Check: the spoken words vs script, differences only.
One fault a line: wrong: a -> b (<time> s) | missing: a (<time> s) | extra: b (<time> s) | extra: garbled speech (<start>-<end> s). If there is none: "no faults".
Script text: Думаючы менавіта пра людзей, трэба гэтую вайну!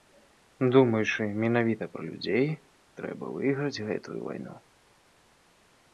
extra: выйграць (3.4 s)